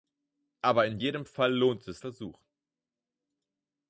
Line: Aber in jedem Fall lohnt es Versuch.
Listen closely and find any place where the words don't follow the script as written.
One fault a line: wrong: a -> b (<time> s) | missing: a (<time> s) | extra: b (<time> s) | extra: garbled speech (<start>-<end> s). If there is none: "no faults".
no faults